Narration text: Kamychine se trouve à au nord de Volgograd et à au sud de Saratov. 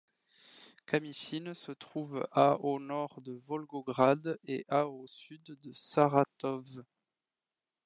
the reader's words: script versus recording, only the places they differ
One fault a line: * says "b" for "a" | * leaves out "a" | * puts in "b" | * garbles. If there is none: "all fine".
all fine